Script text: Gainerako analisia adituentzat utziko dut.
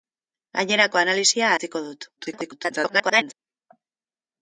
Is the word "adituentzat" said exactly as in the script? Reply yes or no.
no